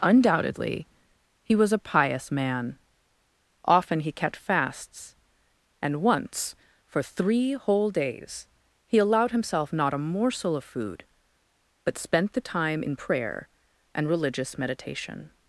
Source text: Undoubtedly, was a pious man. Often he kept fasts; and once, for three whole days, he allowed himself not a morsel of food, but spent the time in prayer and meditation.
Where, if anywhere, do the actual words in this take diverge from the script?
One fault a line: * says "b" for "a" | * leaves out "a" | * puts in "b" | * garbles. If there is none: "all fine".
* puts in "he"
* puts in "religious"